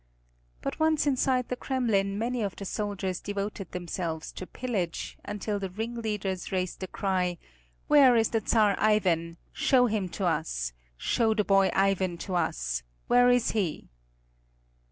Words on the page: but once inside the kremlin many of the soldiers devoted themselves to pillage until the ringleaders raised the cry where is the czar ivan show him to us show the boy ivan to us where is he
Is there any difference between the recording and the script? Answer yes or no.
no